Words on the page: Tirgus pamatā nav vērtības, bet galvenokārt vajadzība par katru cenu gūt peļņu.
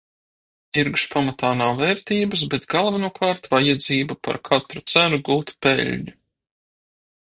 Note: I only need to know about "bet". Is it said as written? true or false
true